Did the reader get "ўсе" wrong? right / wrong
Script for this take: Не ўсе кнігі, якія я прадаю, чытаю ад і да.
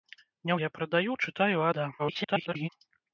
wrong